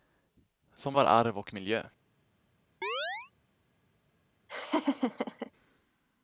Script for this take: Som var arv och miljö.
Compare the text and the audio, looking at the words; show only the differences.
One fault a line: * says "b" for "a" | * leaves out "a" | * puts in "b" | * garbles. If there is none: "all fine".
all fine